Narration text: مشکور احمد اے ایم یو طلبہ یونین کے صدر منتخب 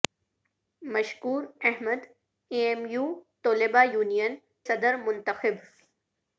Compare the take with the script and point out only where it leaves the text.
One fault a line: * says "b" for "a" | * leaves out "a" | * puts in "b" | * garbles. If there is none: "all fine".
* leaves out "کے"